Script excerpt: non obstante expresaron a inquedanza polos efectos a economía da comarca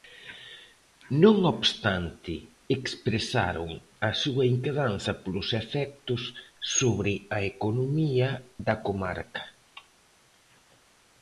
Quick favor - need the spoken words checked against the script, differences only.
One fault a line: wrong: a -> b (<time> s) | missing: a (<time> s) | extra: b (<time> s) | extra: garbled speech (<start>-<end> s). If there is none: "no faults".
extra: súa (4.2 s)
extra: sobre (6.8 s)